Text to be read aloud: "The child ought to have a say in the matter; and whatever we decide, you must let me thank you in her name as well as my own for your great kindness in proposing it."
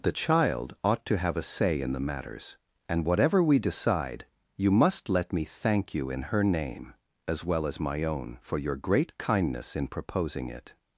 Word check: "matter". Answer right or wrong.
wrong